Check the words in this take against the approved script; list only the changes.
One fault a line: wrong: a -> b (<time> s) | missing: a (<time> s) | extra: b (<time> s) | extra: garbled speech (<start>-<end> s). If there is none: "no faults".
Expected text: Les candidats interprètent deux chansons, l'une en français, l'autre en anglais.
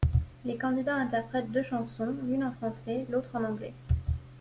no faults